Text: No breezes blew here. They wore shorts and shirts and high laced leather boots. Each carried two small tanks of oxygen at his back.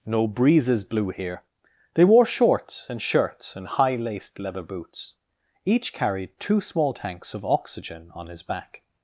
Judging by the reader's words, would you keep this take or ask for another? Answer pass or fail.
fail